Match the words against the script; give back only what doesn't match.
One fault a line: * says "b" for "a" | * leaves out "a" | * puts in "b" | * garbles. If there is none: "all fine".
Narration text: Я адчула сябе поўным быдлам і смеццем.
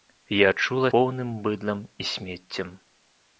* leaves out "сябе"